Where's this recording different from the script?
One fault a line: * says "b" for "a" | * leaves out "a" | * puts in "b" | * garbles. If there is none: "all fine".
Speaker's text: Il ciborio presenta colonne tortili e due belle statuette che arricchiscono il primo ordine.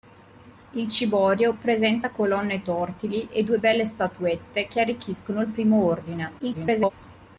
* garbles